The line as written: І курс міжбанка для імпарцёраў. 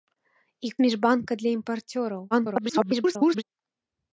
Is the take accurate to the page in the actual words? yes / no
no